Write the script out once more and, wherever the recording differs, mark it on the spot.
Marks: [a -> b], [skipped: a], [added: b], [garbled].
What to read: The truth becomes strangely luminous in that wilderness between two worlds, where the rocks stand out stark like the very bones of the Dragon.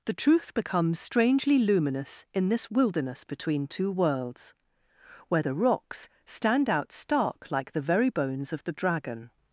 The truth becomes strangely luminous in [that -> this] wilderness between two worlds, where the rocks stand out stark like the very bones of the Dragon.